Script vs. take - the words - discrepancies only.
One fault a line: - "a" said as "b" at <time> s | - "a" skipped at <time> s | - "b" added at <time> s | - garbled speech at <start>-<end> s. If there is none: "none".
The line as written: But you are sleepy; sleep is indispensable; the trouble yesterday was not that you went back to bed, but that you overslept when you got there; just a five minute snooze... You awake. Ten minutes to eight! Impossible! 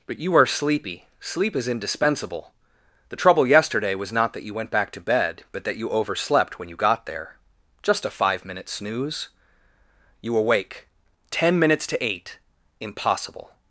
none